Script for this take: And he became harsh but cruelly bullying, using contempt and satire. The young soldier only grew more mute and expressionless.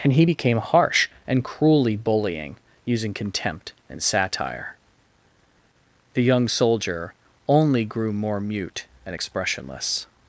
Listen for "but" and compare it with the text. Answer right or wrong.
wrong